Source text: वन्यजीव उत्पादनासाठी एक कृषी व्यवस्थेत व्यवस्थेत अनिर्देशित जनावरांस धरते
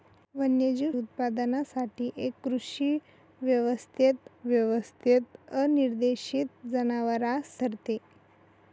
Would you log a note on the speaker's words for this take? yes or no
no